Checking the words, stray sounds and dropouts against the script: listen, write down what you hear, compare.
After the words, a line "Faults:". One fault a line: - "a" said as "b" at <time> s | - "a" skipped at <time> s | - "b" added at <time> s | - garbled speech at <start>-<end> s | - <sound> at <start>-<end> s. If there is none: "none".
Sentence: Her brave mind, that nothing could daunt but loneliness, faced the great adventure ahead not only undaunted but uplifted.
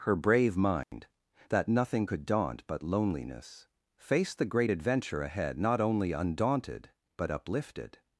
Her brave mind, that nothing could daunt but loneliness, faced the great adventure ahead not only undaunted but uplifted.
Faults:
- dropout at 0.8-0.9 s